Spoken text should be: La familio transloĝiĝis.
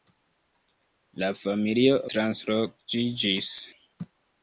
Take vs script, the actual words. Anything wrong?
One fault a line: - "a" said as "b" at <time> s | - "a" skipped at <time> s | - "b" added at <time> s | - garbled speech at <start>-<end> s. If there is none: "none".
none